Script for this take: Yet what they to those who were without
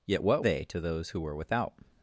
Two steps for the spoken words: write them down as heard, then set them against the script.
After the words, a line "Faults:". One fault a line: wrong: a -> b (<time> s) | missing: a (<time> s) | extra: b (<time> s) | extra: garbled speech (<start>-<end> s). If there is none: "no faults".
Yet what they to those who were without
Faults:
no faults